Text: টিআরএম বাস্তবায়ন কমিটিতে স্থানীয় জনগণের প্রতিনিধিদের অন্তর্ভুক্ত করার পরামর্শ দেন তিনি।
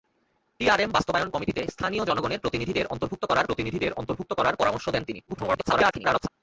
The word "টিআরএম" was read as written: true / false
true